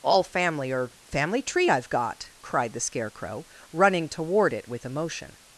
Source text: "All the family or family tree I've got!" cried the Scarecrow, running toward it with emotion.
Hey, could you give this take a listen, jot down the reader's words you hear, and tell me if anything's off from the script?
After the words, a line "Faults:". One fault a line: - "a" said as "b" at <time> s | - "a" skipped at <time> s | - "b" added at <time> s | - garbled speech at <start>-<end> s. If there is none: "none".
"All family or family tree I've got!" cried the Scarecrow, running toward it with emotion.
Faults:
- "the" skipped at 0.2 s